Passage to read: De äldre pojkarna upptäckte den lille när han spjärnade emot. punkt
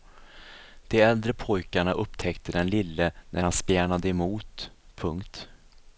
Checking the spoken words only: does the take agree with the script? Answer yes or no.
yes